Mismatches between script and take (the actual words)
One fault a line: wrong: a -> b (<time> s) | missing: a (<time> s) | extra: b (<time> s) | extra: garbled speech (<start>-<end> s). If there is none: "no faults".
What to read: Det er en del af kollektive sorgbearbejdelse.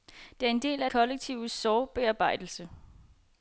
no faults